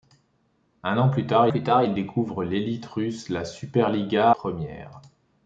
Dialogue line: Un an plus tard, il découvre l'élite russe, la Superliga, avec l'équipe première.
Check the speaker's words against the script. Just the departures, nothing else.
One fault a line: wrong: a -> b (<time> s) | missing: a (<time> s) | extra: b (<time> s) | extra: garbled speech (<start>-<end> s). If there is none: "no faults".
extra: plus tard (1.5 s)
missing: avec l'équipe (4.3 s)